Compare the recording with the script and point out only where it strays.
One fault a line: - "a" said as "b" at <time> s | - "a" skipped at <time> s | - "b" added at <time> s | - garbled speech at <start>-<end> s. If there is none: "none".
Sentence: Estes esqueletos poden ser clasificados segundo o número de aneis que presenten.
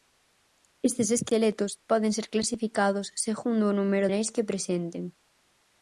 - "de" skipped at 4.1 s